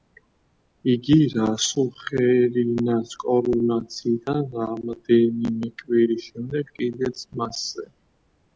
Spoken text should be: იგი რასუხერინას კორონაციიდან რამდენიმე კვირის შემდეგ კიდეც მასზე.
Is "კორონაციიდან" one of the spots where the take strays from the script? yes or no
no